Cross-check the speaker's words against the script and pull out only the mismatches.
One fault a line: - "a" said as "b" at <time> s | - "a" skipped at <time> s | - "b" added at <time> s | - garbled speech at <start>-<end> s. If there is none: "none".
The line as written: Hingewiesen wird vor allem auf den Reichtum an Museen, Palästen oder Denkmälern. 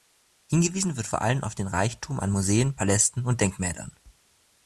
- "oder" said as "und" at 3.2 s